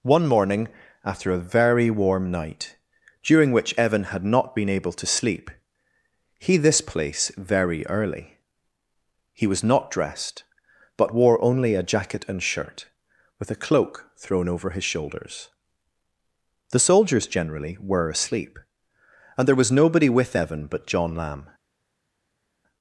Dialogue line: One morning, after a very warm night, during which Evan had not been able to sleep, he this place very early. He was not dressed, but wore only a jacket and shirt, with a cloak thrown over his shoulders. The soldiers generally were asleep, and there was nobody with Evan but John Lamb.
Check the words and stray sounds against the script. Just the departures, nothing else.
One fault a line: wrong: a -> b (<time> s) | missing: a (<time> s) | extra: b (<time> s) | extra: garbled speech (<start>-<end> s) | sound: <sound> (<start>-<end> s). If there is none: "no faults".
no faults